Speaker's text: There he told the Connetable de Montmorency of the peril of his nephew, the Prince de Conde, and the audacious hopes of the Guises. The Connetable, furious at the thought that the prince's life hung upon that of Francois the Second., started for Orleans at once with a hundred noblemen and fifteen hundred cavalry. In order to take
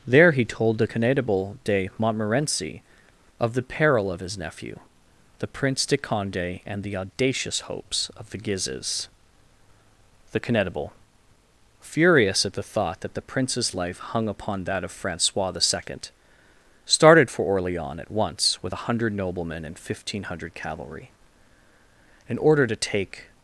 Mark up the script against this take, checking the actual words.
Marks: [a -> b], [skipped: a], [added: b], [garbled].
There he told the Connetable de Montmorency of the peril of his nephew, the Prince de Conde, and the audacious hopes of the Guises. The Connetable, furious at the thought that the prince's life hung upon that of Francois the Second., started for Orleans at once with a hundred noblemen and fifteen hundred cavalry. In order to take